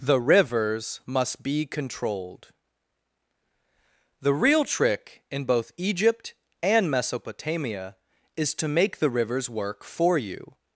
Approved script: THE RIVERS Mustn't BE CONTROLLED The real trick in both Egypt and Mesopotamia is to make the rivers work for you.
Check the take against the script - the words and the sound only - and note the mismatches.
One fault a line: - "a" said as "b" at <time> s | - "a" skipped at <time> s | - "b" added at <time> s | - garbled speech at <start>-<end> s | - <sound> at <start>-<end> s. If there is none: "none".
- "Mustn't" said as "MUST" at 1.1 s